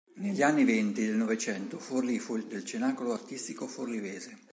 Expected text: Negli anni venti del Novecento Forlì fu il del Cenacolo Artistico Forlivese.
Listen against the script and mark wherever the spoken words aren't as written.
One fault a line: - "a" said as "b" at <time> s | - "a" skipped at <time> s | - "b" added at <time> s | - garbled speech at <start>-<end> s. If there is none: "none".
none